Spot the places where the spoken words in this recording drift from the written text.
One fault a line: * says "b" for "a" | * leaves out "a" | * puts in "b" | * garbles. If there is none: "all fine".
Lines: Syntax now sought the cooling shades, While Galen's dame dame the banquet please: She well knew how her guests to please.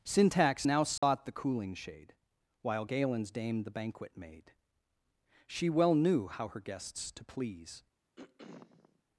* says "shade" for "shades"
* leaves out "dame"
* says "made" for "please"